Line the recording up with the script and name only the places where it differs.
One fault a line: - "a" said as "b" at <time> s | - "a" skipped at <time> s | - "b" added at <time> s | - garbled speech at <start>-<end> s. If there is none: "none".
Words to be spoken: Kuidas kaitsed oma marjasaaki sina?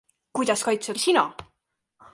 - "oma marjasaaki" skipped at 1.0 s